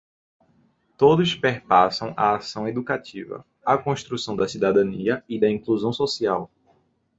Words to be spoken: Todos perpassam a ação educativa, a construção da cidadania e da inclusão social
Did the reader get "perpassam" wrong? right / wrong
right